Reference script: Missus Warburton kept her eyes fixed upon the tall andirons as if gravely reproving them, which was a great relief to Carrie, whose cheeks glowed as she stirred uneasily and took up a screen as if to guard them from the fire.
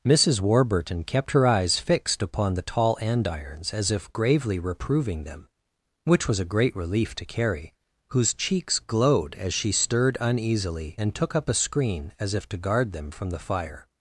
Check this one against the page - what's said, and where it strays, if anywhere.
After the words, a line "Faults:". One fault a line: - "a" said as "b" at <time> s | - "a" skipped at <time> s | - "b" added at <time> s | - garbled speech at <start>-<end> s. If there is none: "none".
Missus Warburton kept her eyes fixed upon the tall andirons as if gravely reproving them, which was a great relief to Carrie, whose cheeks glowed as she stirred uneasily and took up a screen as if to guard them from the fire.
Faults:
none